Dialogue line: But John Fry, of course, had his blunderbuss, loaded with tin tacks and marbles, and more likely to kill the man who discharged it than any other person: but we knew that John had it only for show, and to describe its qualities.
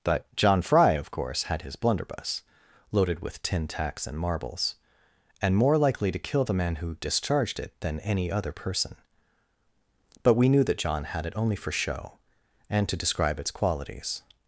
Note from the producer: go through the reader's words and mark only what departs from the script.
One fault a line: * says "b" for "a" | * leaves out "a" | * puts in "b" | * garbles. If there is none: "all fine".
all fine